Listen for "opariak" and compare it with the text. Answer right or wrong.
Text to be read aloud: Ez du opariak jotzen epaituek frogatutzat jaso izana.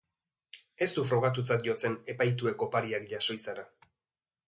wrong